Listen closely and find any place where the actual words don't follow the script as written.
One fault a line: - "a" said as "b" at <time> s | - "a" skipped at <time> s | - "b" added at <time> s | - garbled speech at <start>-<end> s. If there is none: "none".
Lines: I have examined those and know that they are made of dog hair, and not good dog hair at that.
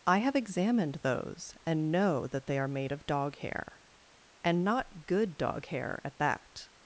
none